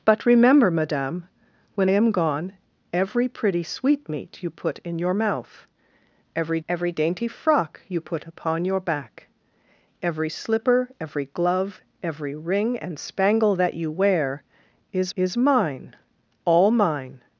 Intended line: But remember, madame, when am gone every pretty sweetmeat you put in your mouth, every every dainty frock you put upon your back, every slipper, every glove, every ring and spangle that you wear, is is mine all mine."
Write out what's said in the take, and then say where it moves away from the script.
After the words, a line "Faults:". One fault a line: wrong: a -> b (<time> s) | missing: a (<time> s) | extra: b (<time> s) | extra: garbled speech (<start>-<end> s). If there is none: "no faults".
But remember, madame, when am gone every pretty sweetmeat you put in your mouth, every every dainty frock you put upon your back, every slipper, every glove, every ring and spangle that you wear, is is mine all mine."
Faults:
no faults